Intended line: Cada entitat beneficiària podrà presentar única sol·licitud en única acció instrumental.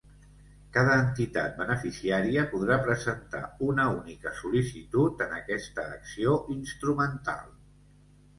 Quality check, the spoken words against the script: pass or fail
fail